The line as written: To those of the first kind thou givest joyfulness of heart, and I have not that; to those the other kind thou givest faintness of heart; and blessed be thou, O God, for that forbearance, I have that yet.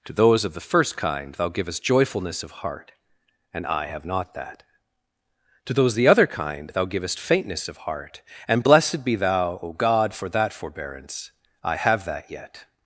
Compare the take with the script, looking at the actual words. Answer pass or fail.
pass